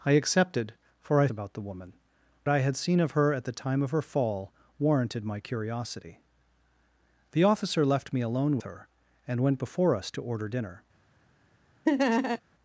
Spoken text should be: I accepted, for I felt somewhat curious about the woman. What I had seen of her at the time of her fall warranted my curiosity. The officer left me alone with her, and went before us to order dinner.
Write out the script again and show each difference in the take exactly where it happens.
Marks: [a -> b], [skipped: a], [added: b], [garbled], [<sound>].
I accepted, for I [skipped: felt somewhat curious] about the woman. [skipped: What] I had seen of her at the time of her fall warranted my curiosity. The officer left me alone [skipped: with] her, and went before us to order dinner. [laugh]